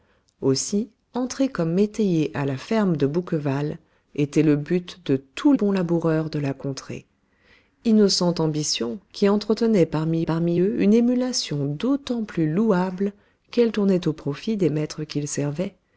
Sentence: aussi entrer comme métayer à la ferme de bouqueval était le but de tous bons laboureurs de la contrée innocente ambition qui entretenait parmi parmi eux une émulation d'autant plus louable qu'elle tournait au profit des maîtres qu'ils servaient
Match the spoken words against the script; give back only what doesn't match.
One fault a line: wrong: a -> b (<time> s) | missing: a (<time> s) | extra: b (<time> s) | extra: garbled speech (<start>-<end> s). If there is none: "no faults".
no faults